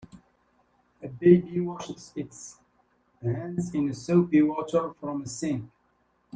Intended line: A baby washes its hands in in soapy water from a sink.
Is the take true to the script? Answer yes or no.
no